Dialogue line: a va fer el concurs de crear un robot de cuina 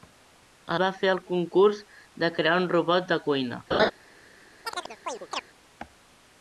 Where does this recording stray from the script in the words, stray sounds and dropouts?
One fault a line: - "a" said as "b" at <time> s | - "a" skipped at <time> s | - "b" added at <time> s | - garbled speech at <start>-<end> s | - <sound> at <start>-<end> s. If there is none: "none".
- laugh at 3.7-3.9 s
- chirp at 4.6-5.4 s